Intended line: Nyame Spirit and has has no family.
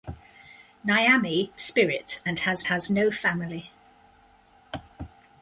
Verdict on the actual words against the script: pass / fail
pass